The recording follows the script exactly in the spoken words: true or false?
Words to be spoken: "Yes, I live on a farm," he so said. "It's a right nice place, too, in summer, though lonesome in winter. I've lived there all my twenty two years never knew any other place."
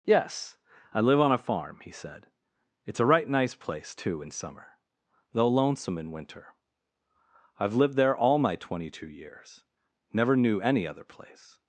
false